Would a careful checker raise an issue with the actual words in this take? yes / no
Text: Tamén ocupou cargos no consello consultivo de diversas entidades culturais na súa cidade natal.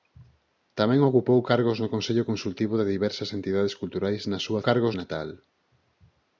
yes